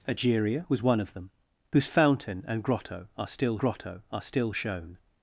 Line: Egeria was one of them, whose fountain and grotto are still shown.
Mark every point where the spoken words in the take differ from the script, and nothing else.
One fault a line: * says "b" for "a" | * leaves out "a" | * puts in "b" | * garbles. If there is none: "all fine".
* puts in "grotto are still"